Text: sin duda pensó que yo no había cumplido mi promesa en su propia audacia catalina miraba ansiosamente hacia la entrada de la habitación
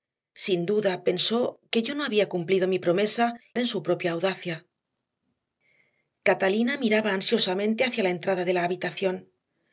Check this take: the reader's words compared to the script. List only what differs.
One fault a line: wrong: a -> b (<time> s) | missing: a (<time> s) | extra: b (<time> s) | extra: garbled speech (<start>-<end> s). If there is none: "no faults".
no faults